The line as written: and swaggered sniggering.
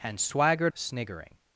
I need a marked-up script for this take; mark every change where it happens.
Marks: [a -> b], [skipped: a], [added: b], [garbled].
and swaggered sniggering.